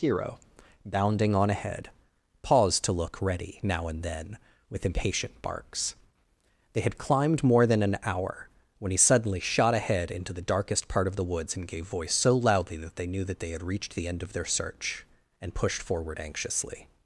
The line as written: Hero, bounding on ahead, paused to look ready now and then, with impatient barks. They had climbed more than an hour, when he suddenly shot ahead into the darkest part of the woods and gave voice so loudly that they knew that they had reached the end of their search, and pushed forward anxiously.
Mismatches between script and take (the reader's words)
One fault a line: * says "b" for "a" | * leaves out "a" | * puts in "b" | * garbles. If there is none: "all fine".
all fine